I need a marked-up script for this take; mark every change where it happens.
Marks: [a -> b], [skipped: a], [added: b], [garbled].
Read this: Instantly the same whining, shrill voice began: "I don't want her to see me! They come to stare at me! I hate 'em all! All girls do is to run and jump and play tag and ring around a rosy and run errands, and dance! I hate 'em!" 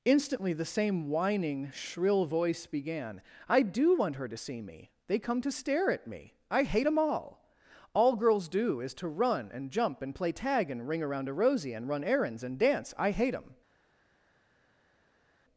Instantly the same whining, shrill voice began: "I [don't -> do] want her to see me! They come to stare at me! I hate 'em all! All girls do is to run and jump and play tag and ring around a rosy and run errands, and dance! I hate 'em!"